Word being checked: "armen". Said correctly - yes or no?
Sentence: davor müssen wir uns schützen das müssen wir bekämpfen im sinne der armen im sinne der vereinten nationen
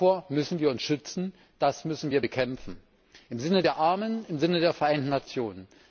yes